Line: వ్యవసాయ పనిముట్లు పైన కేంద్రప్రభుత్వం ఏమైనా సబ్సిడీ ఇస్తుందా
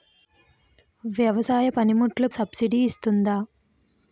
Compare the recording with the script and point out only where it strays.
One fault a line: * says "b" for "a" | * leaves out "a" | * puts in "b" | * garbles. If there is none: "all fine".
* leaves out "పైన కేంద్రప్రభుత్వం ఏమైనా"